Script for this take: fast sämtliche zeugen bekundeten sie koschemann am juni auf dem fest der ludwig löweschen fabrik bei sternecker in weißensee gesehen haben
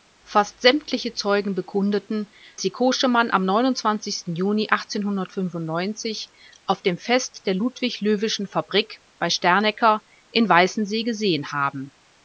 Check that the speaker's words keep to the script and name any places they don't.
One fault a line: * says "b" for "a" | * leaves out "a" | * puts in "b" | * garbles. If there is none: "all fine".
all fine